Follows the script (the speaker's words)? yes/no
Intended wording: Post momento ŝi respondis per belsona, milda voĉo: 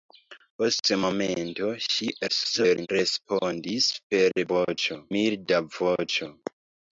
no